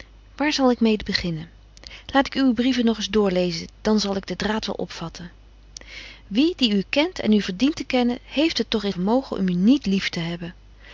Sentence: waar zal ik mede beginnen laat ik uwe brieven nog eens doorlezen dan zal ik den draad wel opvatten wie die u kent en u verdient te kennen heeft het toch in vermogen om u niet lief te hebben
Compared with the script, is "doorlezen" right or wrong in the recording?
right